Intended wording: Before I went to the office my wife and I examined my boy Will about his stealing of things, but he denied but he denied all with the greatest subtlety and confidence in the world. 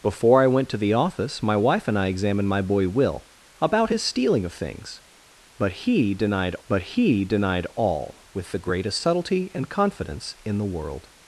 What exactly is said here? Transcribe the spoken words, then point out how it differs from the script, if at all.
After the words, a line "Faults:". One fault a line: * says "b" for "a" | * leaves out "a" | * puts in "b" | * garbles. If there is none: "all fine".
Before I went to the office my wife and I examined my boy Will about his stealing of things, but he denied but he denied all with the greatest subtlety and confidence in the world.
Faults:
all fine